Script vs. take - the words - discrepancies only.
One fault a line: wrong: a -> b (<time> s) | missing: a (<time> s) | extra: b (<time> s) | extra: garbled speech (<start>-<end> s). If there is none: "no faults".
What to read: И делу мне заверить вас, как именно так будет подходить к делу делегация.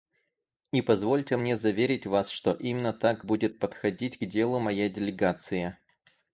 wrong: делу -> позвольте (0.8 s)
wrong: как -> что (2.3 s)
extra: моя (4.6 s)